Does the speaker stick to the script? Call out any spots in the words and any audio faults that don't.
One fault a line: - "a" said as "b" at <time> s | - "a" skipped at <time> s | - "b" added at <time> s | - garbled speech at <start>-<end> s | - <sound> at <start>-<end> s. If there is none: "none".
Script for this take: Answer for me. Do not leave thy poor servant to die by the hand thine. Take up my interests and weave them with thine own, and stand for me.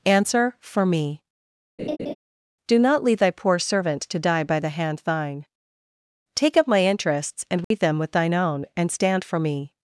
- laugh at 1.8-2.1 s
- dropout at 7.6-7.7 s